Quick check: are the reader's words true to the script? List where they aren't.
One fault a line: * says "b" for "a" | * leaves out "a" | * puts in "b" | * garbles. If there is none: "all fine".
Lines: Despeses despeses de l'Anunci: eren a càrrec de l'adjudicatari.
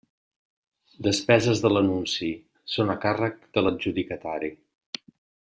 * leaves out "despeses"
* says "són" for "eren"